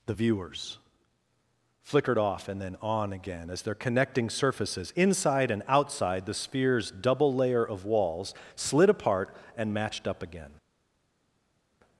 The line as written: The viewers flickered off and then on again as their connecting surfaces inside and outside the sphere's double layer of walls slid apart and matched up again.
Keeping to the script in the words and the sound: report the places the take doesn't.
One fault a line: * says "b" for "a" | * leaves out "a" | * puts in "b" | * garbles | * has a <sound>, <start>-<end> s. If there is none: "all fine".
all fine